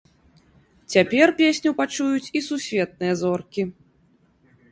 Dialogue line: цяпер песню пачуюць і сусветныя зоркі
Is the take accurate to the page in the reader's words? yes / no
yes